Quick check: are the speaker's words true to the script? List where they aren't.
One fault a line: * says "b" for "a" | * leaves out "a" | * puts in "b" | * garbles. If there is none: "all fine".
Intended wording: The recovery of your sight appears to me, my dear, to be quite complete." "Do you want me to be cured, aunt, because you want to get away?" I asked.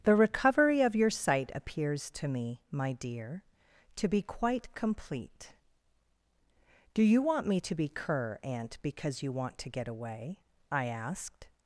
* says "cur" for "cured"